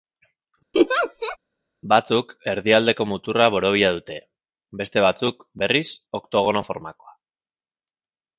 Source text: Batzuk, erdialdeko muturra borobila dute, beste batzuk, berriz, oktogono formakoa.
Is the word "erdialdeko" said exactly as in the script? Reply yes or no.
yes